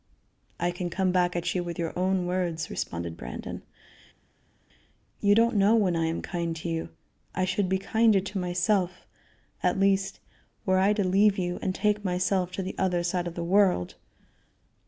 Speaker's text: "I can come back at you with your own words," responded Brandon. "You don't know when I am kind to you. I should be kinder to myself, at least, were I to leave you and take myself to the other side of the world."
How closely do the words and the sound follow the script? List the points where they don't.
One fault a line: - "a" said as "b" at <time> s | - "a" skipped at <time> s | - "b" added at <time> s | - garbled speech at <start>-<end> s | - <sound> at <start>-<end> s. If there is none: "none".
none